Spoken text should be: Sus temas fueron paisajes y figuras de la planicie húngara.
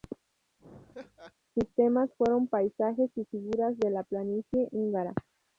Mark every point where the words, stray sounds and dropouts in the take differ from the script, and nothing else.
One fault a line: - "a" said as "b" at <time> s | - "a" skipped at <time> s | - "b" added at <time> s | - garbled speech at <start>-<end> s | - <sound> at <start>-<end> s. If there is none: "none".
- laugh at 0.6-1.3 s